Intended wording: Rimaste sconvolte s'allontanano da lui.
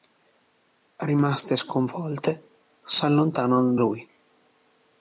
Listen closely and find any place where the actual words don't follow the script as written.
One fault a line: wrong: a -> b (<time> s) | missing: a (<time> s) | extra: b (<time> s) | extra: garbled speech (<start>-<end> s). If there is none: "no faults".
missing: da (3.8 s)